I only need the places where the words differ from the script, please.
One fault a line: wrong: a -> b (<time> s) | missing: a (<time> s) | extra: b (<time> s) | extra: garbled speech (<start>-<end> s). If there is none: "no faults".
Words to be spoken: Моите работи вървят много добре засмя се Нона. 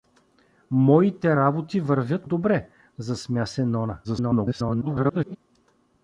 missing: много (2.3 s)
extra: garbled speech (4.0-5.4 s)